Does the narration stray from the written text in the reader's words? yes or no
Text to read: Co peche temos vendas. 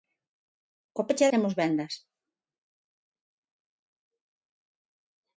no